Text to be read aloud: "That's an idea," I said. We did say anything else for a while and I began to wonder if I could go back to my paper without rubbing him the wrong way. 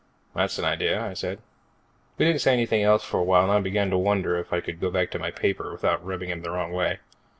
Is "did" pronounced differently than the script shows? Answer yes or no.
yes